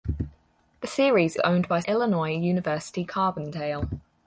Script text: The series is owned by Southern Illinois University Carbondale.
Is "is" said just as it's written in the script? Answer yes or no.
no